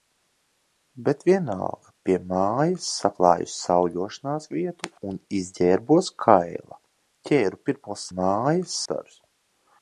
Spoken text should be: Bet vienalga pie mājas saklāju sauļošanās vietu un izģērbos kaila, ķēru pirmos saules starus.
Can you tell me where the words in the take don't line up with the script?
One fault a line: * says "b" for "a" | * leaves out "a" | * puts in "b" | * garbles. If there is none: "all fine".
* says "mājas" for "saules"